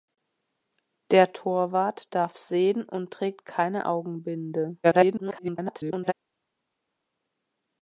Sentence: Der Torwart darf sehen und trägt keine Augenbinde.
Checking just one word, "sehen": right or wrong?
right